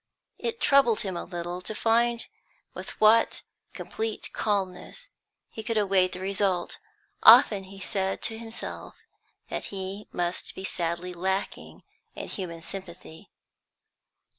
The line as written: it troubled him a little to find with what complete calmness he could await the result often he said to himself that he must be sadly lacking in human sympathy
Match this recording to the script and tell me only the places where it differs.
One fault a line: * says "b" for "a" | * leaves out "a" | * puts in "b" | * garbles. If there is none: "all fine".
all fine